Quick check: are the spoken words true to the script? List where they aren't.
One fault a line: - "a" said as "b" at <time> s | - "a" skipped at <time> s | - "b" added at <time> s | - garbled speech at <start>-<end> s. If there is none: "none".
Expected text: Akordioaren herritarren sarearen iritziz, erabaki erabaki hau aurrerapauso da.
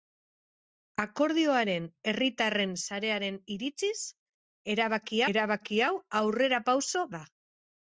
none